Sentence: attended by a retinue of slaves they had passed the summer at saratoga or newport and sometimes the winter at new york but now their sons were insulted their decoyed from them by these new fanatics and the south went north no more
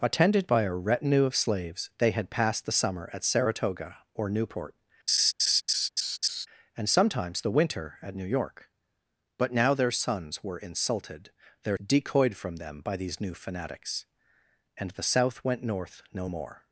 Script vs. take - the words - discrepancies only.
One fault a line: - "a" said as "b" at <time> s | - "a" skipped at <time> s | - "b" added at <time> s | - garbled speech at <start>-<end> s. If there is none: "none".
none